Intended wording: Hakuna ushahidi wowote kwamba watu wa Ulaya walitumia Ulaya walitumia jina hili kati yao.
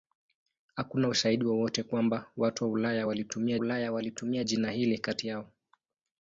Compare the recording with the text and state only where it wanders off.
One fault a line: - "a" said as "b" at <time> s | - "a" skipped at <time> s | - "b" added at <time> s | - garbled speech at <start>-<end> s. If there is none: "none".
none